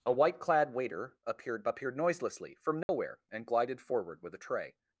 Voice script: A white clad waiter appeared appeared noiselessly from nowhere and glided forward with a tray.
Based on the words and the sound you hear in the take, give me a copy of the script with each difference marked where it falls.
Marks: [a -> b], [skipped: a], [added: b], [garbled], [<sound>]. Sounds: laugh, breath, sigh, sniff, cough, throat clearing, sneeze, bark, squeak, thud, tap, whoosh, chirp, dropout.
A white clad waiter appeared appeared noiselessly from nowhere [dropout] and glided forward with a tray.